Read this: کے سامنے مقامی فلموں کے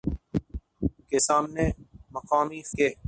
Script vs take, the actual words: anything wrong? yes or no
yes